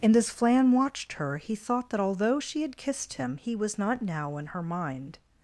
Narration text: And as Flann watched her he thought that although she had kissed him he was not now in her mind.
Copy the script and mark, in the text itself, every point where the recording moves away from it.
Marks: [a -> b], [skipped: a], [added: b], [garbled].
And as Flann watched her he thought that although she had kissed him he was not now in her mind.